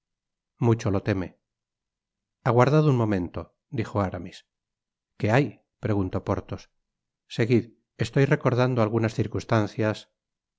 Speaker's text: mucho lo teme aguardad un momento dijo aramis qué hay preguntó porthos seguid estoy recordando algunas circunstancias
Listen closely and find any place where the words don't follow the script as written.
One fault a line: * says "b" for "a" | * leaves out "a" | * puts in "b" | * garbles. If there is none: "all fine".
all fine